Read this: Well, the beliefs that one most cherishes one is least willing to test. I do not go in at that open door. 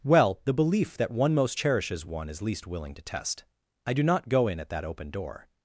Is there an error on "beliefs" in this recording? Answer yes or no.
yes